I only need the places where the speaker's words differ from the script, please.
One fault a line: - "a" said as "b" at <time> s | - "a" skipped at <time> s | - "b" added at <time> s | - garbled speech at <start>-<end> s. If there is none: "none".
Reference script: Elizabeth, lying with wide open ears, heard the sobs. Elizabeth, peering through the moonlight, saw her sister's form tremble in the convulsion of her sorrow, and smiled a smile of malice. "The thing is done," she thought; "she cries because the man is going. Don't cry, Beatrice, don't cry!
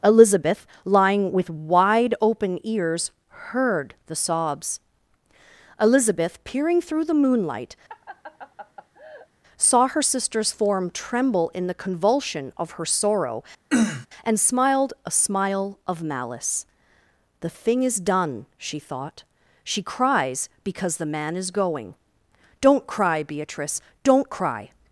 none